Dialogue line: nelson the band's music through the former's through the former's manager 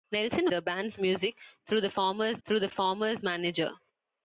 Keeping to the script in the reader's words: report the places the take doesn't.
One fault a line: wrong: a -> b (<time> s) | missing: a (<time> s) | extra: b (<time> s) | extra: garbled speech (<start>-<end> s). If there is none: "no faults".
no faults